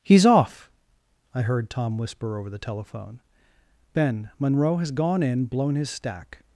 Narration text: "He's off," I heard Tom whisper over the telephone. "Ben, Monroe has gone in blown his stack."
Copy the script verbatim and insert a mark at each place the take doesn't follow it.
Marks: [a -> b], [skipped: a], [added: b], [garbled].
"He's off," I heard Tom whisper over the telephone. "Ben, Monroe has gone in blown his stack."